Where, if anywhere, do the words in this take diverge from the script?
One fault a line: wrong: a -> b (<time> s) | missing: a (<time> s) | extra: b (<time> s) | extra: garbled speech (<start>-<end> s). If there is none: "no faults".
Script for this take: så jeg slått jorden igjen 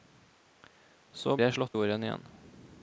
no faults